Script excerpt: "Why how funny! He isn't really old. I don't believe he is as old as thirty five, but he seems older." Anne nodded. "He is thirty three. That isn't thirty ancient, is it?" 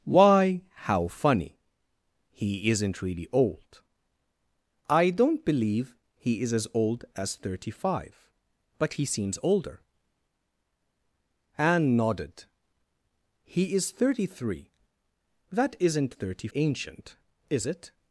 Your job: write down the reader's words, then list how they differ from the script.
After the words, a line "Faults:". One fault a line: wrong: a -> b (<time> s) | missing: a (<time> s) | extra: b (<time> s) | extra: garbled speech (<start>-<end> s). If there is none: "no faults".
"Why how funny! He isn't really old. I don't believe he is as old as thirty five, but he seems older." Anne nodded. "He is thirty three. That isn't thirty ancient, is it?"
Faults:
no faults